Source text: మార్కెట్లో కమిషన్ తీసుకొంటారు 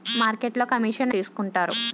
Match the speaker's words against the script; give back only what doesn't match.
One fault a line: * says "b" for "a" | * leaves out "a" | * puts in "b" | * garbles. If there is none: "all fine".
all fine